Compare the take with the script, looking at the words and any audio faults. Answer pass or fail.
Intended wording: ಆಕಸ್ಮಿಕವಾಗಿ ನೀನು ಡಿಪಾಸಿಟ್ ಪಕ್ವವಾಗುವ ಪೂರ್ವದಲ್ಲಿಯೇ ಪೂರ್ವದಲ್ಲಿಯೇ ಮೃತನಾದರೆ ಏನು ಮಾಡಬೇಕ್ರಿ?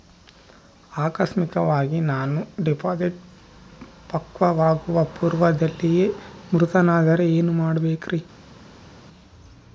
fail